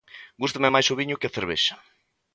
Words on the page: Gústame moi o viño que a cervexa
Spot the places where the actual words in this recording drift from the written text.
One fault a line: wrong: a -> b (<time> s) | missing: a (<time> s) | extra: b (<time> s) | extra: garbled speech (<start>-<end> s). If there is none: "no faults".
wrong: moi -> máis (0.7 s)